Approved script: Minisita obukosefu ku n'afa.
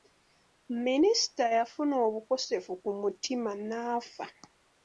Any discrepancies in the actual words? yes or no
yes